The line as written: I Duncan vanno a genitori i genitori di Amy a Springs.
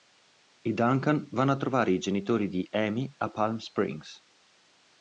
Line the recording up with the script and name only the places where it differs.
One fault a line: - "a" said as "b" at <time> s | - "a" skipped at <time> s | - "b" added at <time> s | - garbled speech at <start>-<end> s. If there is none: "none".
- "genitori" said as "trovare" at 1.6 s
- "Palm" added at 3.3 s